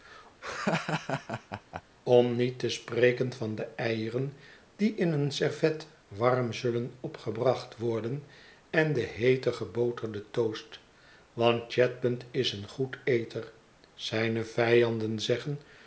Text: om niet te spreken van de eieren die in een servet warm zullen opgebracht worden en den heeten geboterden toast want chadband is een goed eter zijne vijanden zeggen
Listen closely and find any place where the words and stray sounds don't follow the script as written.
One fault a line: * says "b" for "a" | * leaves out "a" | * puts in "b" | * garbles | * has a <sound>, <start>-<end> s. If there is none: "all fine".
* has a laugh, 0.4-1.8 s